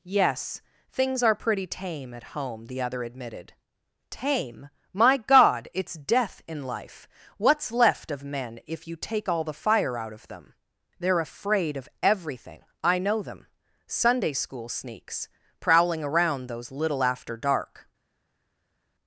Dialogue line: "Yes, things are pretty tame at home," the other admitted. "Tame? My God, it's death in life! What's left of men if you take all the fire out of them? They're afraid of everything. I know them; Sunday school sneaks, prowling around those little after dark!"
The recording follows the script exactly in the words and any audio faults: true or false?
true